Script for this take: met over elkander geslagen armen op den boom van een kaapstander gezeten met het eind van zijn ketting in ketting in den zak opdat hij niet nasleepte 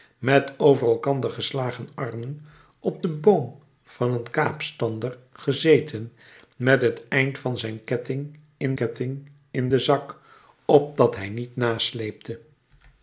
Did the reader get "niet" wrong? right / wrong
right